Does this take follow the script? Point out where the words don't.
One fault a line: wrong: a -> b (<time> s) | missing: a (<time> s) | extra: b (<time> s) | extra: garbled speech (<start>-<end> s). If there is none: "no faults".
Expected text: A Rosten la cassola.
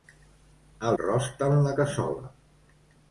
no faults